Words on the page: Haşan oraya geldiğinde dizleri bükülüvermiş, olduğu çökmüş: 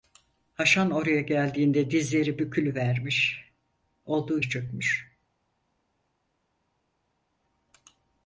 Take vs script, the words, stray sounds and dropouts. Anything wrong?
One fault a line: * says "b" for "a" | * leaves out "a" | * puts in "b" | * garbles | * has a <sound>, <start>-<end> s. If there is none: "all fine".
all fine